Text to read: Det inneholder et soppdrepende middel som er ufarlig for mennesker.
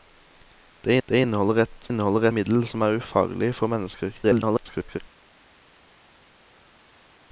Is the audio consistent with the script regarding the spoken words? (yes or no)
no